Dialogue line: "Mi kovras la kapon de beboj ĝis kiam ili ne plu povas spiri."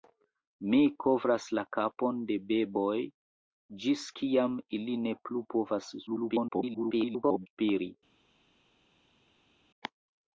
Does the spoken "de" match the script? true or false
true